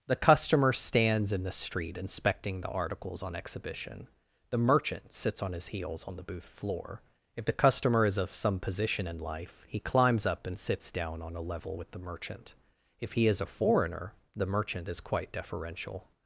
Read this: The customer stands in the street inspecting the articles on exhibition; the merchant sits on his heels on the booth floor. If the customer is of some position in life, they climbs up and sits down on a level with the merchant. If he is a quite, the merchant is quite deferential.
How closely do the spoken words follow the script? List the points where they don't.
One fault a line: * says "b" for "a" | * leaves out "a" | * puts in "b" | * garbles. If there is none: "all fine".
* says "he" for "they"
* says "foreigner" for "quite"